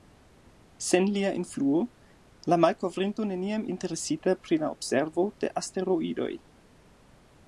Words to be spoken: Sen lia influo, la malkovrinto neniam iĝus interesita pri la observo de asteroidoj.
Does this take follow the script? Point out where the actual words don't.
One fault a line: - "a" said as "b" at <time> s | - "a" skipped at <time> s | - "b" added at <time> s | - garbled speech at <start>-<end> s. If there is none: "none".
- "iĝus" skipped at 3.7 s